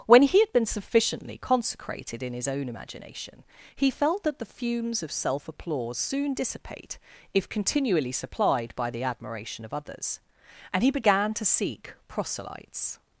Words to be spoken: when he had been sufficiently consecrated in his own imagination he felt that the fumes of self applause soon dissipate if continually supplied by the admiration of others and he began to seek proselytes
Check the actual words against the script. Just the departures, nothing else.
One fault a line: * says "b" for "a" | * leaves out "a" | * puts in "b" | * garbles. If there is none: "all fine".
all fine